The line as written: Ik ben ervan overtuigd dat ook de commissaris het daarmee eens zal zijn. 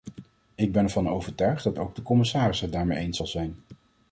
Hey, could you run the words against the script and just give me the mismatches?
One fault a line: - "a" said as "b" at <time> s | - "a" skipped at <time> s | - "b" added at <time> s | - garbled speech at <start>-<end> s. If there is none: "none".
none